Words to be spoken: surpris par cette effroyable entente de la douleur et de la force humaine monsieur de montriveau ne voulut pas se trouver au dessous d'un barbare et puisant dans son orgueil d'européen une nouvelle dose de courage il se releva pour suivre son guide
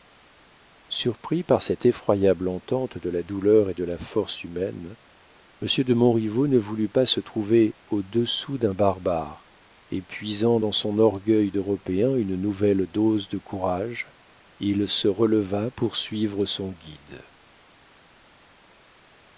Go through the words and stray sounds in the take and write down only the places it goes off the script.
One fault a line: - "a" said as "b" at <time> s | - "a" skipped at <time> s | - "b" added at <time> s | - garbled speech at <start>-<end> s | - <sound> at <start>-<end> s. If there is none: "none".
none